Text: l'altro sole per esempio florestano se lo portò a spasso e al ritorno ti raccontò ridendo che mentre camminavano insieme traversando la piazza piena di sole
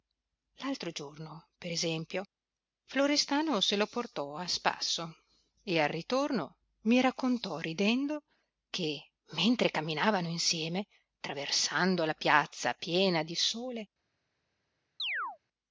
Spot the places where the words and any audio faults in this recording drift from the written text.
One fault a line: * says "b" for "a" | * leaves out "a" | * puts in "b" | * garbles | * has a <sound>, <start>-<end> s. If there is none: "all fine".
* says "giorno" for "sole"
* says "mi" for "ti"
* has a chirp, 15.0-15.4 s